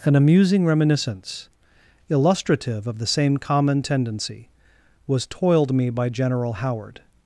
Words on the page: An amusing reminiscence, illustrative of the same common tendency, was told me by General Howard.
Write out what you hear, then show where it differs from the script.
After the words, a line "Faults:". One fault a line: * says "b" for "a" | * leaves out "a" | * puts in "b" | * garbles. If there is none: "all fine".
An amusing reminiscence, illustrative of the same common tendency, was toiled me by General Howard.
Faults:
* says "toiled" for "told"